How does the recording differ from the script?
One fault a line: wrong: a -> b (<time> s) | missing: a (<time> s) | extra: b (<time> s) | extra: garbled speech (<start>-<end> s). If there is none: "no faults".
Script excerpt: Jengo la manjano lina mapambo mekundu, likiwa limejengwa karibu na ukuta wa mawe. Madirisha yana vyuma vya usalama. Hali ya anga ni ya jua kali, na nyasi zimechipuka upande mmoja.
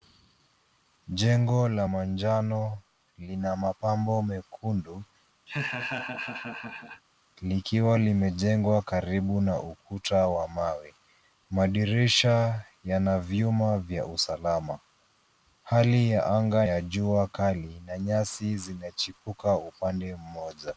missing: ni (16.7 s)